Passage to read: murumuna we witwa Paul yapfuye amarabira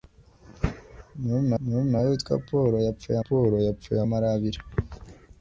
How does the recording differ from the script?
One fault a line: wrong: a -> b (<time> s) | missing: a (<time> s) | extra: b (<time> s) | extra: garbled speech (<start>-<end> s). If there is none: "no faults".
extra: murumuna (1.6 s)
extra: Paul yapfuye (3.2 s)